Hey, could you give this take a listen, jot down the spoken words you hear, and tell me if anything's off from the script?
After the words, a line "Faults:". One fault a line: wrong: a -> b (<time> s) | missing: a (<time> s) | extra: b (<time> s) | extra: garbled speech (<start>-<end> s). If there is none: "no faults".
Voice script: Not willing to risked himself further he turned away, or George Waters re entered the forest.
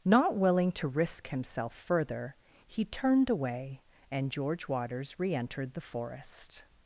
Not willing to risk himself further he turned away, and George Waters re entered the forest.
Faults:
wrong: risked -> risk (0.9 s)
wrong: or -> and (4.1 s)